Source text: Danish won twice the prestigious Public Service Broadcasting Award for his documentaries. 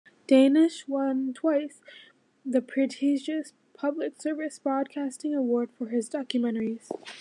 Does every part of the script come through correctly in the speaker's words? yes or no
yes